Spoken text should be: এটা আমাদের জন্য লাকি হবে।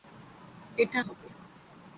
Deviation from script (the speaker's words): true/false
true